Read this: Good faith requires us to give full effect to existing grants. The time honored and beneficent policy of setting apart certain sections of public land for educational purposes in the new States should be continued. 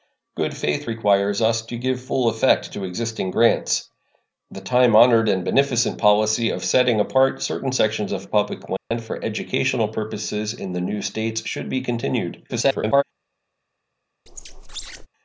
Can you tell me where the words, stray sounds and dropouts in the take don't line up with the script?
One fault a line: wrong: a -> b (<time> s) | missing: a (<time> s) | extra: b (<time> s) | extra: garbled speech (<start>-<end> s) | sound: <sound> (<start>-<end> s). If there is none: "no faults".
sound: dropout (8.8-8.9 s)
extra: garbled speech (12.5-13.0 s)
sound: squeak (14.3-15.1 s)